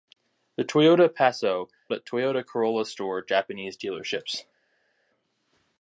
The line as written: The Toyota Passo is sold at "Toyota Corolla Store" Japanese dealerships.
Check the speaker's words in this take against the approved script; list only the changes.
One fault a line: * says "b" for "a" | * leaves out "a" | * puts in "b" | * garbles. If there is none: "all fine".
* leaves out "is sold"